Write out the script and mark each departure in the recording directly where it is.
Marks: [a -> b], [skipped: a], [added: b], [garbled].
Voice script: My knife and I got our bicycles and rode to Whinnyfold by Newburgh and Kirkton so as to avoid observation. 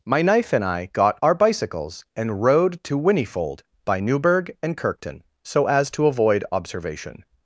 My knife and I got our bicycles and rode to Whinnyfold by Newburgh and Kirkton so as to avoid observation.